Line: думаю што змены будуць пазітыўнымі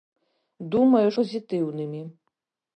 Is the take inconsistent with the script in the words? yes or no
yes